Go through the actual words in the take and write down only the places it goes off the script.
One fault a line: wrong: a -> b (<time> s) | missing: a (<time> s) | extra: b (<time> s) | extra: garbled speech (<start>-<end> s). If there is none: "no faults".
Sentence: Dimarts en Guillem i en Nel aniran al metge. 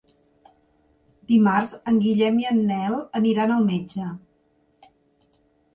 no faults